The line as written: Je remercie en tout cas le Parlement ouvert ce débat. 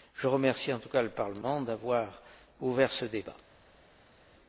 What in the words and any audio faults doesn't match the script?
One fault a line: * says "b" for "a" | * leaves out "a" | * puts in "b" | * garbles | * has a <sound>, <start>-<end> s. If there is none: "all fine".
* puts in "d'avoir"